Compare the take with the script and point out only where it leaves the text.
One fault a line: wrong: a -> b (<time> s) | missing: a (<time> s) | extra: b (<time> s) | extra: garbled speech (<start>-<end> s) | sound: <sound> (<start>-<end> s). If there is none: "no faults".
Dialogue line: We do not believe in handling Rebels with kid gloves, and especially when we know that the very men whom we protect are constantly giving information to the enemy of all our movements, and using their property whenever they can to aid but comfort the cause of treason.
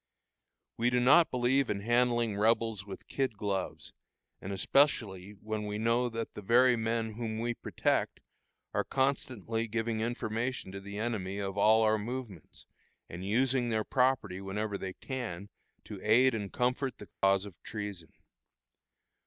wrong: but -> and (16.3 s)
sound: dropout (17.1-17.2 s)